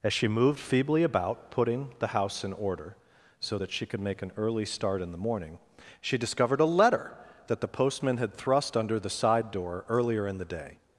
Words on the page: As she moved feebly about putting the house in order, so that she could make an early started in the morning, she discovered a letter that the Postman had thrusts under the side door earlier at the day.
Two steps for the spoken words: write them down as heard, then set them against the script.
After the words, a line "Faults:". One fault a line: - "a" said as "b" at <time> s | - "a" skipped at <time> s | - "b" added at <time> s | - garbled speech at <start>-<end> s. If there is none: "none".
As she moved feebly about putting the house in order, so that she could make an early start in the morning, she discovered a letter that the Postman had thrust under the side door earlier in the day.
Faults:
- "started" said as "start" at 4.7 s
- "thrusts" said as "thrust" at 8.3 s
- "at" said as "in" at 10.3 s